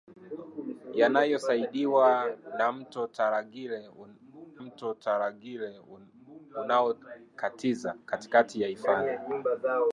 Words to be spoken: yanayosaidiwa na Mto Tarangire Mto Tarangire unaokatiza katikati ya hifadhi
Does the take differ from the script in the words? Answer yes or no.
no